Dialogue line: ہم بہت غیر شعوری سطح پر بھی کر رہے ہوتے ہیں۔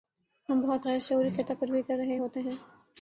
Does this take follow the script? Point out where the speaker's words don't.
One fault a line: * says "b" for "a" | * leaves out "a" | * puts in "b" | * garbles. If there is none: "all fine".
all fine